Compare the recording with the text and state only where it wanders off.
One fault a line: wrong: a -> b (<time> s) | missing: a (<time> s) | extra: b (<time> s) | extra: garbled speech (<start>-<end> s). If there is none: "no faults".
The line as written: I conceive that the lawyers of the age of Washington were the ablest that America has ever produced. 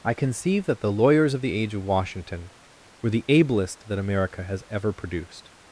no faults